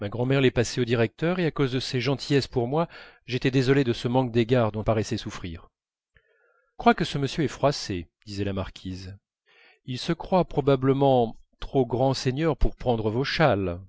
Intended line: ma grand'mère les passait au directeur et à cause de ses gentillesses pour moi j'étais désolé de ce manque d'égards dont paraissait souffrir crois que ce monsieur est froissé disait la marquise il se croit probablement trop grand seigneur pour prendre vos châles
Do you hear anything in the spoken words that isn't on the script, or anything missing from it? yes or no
no